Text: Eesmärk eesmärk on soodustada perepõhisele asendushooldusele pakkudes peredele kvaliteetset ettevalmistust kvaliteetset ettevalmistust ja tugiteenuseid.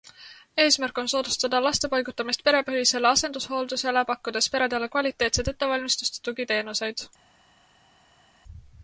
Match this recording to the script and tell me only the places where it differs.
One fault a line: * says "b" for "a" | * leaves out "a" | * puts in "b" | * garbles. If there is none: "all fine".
* leaves out "eesmärk"
* puts in "laste paigutamist"
* leaves out "kvaliteetset ettevalmistust"